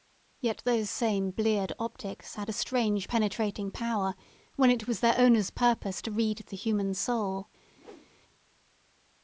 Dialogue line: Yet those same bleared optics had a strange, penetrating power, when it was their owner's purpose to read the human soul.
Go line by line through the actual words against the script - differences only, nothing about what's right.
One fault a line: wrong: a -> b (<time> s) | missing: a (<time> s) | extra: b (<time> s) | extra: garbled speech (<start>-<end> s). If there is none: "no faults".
no faults